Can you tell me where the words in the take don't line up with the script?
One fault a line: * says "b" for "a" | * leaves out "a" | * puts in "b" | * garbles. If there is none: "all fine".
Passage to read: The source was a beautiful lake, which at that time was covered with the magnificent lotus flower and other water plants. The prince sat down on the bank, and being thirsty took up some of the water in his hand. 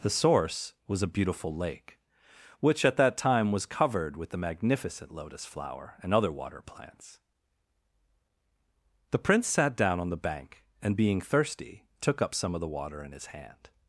all fine